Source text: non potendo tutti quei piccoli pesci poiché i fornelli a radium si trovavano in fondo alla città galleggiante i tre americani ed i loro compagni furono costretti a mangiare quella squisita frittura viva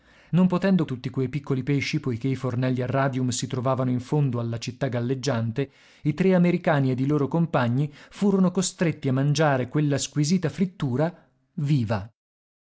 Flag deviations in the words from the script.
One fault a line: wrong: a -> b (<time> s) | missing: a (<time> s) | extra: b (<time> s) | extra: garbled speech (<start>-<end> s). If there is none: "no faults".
no faults